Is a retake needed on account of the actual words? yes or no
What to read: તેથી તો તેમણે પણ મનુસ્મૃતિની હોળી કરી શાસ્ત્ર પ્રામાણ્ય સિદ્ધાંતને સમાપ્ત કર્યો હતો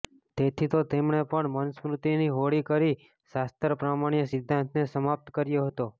no